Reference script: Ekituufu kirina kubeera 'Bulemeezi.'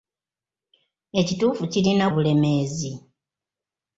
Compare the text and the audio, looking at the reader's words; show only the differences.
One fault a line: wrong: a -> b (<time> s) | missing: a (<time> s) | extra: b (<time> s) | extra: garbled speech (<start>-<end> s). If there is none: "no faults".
missing: kubeera (2.0 s)